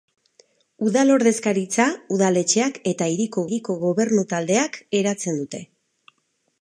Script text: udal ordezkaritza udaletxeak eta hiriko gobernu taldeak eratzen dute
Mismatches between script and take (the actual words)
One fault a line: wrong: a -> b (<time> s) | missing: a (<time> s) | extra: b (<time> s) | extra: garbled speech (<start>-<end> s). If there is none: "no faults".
extra: hiriko (3.5 s)